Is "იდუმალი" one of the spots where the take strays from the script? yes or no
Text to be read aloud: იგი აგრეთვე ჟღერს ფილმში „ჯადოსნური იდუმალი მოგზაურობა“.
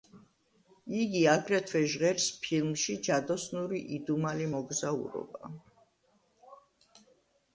no